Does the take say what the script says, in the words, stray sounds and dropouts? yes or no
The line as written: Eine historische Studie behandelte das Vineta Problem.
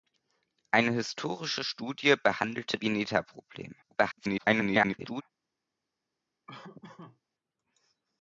no